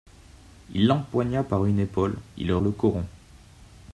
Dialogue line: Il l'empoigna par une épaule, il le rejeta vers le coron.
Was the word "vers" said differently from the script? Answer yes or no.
yes